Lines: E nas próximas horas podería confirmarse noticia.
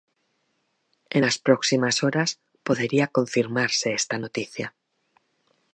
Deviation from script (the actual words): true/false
true